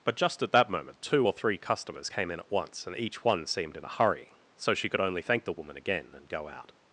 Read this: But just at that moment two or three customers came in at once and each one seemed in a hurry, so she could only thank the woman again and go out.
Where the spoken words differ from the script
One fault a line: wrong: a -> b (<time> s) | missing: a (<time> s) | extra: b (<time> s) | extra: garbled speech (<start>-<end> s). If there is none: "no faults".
no faults